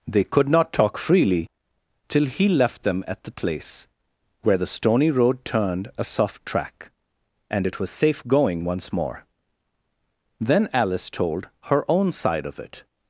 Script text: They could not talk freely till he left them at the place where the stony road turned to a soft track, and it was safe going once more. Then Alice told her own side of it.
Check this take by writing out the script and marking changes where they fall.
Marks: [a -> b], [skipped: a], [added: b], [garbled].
They could not talk freely till he left them at the place where the stony road turned [skipped: to] a soft track, and it was safe going once more. Then Alice told her own side of it.